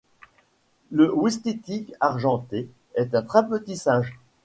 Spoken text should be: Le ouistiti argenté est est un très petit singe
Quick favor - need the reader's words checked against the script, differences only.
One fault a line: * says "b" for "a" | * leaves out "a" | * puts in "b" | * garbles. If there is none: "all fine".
* leaves out "est"